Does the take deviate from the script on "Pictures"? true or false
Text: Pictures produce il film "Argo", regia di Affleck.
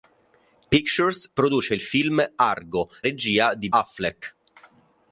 false